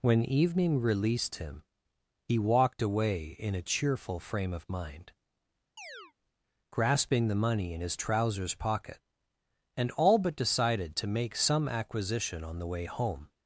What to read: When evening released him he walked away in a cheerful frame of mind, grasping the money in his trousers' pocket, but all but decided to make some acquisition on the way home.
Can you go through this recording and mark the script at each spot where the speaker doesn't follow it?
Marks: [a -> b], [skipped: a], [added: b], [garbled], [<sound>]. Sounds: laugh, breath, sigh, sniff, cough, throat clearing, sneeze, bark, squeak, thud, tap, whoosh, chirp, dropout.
When evening released him he walked away in a cheerful frame of mind, [chirp] grasping the money in his trousers' pocket, [but -> and] all but decided to make some acquisition on the way home.